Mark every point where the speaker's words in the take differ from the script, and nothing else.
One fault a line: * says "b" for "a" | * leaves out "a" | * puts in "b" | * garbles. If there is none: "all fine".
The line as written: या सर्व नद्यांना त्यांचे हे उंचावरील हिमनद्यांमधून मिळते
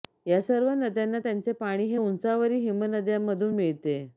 * puts in "पाणी"